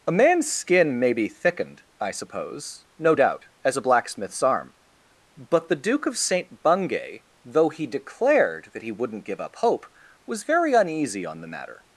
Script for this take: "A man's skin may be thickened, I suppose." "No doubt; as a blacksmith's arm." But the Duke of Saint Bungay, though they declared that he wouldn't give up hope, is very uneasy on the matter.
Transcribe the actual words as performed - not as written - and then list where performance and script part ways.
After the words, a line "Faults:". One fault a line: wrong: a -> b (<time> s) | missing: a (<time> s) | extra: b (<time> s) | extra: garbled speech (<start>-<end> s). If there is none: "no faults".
"A man's skin may be thickened, I suppose." "No doubt; as a blacksmith's arm." But the Duke of Saint Bungay, though he declared that he wouldn't give up hope, was very uneasy on the matter.
Faults:
wrong: they -> he (7.7 s)
wrong: is -> was (10.2 s)